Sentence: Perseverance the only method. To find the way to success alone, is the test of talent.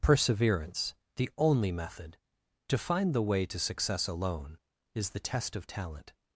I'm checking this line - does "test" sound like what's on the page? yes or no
yes